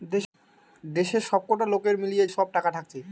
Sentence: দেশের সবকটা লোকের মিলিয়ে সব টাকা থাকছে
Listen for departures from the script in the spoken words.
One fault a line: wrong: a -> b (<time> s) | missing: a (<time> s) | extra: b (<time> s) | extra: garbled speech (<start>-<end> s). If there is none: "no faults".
no faults